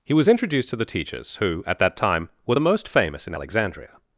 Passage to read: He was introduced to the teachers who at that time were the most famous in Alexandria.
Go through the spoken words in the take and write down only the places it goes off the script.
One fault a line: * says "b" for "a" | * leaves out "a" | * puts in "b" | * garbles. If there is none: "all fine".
all fine